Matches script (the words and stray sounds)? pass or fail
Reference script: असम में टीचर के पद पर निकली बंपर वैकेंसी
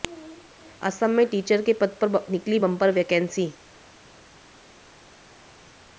pass